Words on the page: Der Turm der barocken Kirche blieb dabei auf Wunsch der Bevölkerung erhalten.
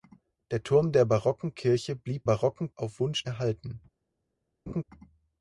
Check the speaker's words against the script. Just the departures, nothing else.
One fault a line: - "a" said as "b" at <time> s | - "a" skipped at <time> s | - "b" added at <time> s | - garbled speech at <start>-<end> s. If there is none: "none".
- "dabei" said as "barocken" at 2.2 s
- "der Bevölkerung" skipped at 3.2 s